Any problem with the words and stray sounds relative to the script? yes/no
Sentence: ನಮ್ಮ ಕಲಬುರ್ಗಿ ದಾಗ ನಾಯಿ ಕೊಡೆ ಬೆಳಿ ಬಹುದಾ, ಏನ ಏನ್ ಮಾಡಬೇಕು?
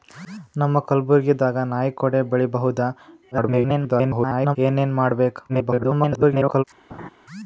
yes